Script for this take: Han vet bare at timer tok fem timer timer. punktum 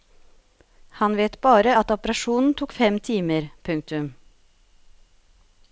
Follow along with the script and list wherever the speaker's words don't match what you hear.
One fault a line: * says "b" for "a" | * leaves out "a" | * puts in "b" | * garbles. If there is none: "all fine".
* says "operasjonen" for "timer"
* leaves out "timer"